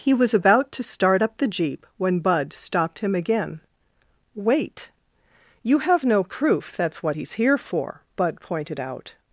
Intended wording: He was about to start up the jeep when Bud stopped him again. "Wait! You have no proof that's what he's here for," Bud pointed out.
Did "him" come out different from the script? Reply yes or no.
no